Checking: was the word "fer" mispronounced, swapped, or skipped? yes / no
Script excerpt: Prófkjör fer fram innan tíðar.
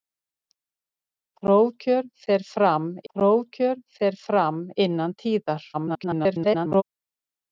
no